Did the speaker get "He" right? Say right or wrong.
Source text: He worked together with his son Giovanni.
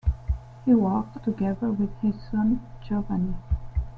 right